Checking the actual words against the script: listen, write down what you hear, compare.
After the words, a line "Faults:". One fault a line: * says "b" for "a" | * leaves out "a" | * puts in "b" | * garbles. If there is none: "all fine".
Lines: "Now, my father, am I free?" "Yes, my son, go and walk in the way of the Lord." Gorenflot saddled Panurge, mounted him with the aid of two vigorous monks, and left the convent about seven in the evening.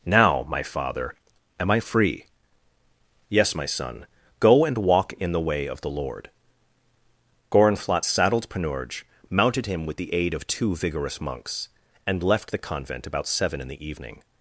"Now, my father, am I free?" "Yes, my son, go and walk in the way of the Lord." Gorenflot saddled Panurge, mounted him with the aid of two vigorous monks, and left the convent about seven in the evening.
Faults:
all fine